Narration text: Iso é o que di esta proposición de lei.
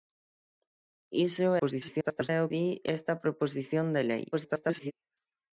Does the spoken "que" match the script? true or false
false